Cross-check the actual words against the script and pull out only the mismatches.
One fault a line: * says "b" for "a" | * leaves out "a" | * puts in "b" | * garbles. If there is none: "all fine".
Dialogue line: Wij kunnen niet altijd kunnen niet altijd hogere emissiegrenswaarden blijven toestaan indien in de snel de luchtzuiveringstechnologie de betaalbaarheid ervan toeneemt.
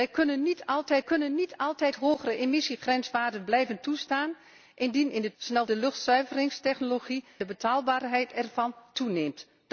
all fine